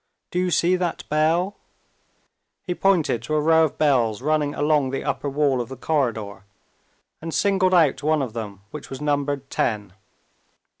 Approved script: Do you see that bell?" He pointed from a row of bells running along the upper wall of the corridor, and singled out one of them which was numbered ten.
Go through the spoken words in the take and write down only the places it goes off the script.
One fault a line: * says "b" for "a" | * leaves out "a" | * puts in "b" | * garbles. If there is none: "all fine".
* says "to" for "from"